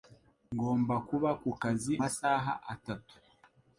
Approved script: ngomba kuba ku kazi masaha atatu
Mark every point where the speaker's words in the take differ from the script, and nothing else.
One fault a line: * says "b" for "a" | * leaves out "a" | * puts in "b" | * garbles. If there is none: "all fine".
all fine